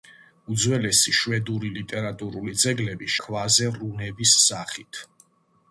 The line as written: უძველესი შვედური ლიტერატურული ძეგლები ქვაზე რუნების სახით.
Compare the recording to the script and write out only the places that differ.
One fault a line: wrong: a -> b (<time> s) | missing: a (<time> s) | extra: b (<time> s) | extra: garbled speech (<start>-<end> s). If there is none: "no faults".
no faults